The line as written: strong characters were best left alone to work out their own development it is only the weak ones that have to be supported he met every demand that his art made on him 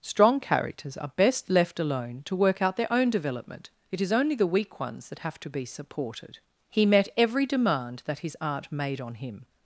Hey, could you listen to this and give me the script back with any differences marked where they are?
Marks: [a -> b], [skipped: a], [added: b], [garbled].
strong characters [were -> are] best left alone to work out their own development it is only the weak ones that have to be supported he met every demand that his art made on him